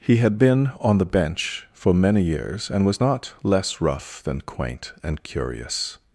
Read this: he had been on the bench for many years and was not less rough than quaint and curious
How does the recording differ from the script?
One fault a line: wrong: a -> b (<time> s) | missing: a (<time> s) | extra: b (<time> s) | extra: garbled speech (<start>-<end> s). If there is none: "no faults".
no faults